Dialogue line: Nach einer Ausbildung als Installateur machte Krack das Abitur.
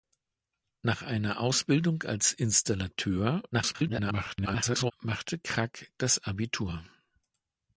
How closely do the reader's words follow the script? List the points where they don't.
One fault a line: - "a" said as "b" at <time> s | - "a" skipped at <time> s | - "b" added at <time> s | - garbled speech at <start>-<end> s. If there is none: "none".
- garbled speech at 3.5-4.9 s